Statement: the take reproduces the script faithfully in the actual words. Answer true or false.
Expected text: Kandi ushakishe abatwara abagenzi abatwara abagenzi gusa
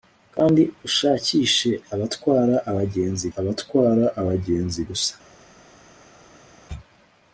true